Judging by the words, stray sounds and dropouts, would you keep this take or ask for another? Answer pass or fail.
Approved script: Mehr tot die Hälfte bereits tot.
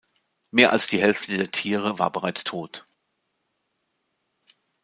fail